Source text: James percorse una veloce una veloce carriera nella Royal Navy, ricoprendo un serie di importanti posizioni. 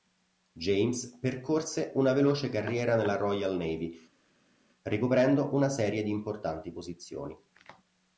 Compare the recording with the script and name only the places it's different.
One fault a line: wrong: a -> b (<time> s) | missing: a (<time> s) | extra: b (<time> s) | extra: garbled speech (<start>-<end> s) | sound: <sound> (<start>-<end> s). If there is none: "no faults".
missing: una veloce (2.5 s)
wrong: un -> una (5.5 s)